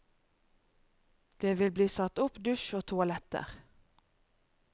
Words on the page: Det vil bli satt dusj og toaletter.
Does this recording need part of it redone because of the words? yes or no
yes